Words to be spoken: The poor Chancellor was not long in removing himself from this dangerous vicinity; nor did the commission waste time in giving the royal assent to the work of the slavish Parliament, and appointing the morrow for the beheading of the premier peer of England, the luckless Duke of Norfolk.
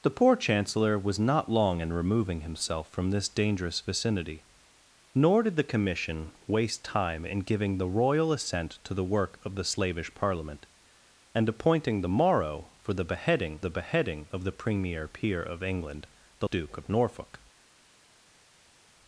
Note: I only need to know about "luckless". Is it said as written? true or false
false